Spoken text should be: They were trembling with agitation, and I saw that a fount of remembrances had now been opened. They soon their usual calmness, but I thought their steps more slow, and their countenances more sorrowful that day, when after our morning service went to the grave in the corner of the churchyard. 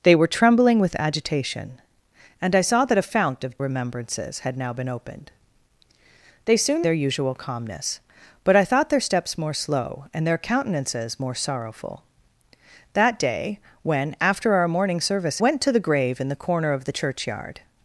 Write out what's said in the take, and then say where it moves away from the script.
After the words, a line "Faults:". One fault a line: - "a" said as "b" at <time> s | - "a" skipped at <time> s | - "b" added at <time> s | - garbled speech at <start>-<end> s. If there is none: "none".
They were trembling with agitation, and I saw that a fount of remembrances had now been opened. They soon their usual calmness, but I thought their steps more slow, and their countenances more sorrowful that day, when after our morning service went to the grave in the corner of the churchyard.
Faults:
none